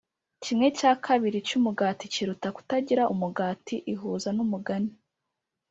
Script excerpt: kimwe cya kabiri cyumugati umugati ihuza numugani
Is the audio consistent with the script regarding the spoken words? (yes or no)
no